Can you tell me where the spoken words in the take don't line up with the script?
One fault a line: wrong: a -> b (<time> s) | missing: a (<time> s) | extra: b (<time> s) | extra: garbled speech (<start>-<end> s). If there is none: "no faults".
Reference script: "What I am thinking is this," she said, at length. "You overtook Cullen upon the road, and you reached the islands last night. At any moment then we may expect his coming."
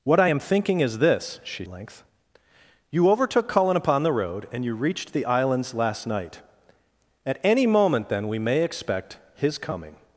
missing: said at (1.7 s)